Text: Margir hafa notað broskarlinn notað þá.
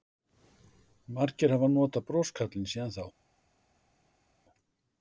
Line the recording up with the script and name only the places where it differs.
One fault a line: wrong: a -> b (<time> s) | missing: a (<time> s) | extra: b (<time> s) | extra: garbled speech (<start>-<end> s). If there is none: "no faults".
wrong: notað -> síðan (2.8 s)